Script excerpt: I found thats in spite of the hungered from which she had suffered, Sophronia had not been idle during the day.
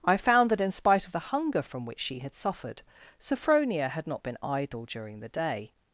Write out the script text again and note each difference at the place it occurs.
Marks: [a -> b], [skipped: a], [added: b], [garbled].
I found [thats -> that] in spite of the [hungered -> hunger] from which she had suffered, Sophronia had not been idle during the day.